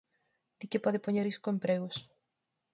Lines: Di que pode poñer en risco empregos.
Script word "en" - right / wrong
wrong